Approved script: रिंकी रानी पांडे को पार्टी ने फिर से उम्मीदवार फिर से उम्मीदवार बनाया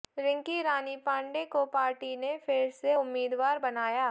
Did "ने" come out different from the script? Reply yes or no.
no